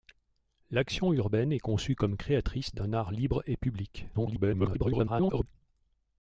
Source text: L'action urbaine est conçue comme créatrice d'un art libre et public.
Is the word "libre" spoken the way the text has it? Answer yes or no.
yes